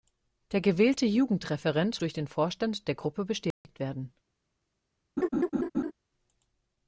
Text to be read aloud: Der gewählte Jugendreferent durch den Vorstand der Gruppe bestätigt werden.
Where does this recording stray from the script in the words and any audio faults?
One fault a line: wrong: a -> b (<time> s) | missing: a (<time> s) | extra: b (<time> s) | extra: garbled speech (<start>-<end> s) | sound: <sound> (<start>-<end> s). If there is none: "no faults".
sound: dropout (3.5-3.6 s)
sound: laugh (5.2-5.9 s)